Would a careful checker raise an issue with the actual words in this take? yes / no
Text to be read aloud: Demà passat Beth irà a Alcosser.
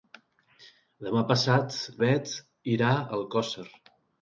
no